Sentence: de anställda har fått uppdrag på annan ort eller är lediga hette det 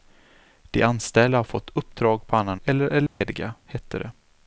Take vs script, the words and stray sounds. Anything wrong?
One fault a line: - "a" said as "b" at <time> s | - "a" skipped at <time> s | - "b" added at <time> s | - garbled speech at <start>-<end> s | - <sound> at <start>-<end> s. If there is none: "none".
- "ort" skipped at 2.6 s
- dropout at 3.1-3.2 s